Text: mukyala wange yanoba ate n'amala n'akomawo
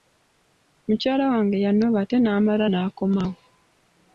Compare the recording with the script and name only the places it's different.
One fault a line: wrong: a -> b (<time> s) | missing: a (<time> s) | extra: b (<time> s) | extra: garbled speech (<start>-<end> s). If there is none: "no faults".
no faults